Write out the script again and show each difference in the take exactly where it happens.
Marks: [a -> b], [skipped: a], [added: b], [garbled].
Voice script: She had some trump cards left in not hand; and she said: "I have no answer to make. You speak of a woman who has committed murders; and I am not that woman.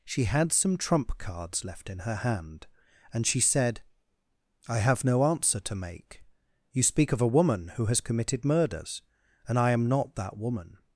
She had some trump cards left in [not -> her] hand; and she said: "I have no answer to make. You speak of a woman who has committed murders; and I am not that woman.